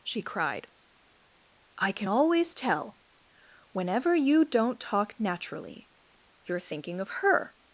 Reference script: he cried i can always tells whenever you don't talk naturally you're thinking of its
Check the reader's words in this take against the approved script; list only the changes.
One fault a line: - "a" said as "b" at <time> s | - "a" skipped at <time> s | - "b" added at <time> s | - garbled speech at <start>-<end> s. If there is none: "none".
- "he" said as "she" at 0.0 s
- "tells" said as "tell" at 2.5 s
- "its" said as "her" at 7.2 s